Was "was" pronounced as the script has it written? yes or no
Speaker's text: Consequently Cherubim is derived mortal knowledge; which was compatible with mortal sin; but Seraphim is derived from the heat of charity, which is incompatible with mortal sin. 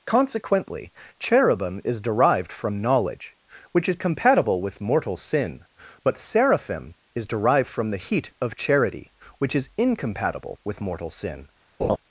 no